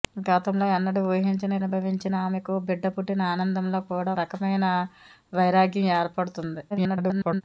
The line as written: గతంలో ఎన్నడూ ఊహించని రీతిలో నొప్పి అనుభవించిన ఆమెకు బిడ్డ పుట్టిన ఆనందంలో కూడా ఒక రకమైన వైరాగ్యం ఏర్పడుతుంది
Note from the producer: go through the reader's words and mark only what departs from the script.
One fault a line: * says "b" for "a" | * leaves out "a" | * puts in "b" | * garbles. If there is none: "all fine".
* leaves out "రీతిలో నొప్పి"
* leaves out "ఒక"
* garbles